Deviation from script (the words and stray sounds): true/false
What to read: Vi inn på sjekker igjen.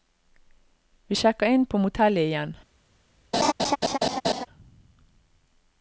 true